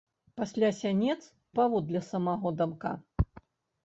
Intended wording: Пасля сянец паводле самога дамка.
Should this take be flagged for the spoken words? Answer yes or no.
no